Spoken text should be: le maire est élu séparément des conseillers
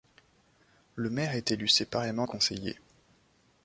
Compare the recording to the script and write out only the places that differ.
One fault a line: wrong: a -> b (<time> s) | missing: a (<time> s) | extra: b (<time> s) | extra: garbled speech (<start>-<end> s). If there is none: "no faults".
missing: des (2.3 s)